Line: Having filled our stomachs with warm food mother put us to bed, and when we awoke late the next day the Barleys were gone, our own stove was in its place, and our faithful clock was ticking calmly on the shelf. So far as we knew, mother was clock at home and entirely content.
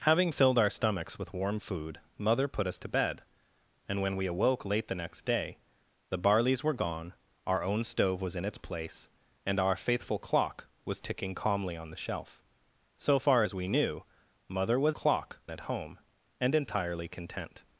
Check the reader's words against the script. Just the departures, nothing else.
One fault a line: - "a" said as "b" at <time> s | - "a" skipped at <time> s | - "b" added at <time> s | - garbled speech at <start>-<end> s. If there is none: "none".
none